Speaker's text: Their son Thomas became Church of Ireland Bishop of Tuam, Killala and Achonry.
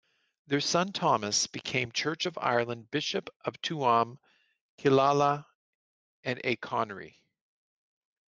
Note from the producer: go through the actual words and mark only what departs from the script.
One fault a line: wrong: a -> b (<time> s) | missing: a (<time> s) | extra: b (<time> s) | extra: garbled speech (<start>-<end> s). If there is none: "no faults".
no faults